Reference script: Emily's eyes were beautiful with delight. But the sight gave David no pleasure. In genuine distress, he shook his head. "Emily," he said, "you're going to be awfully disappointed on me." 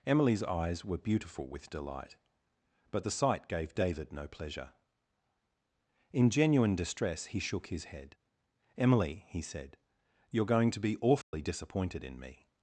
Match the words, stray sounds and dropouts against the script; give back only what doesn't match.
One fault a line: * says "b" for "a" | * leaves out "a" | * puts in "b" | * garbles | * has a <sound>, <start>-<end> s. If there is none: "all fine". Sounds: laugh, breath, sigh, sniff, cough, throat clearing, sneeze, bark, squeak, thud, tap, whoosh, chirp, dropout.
* has a dropout, 11.2-11.3 s
* says "in" for "on"